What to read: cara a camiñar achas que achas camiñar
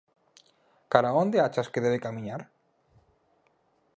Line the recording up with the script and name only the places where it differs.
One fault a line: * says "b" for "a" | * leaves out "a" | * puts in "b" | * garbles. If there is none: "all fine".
* says "onde" for "camiñar"
* says "debe" for "achas"